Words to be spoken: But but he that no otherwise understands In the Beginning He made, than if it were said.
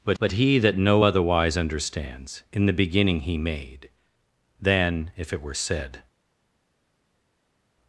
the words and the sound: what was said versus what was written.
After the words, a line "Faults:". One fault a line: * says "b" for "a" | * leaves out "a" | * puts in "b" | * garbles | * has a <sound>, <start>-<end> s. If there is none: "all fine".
But but he that no otherwise understands In the Beginning He made, than if it were said.
Faults:
all fine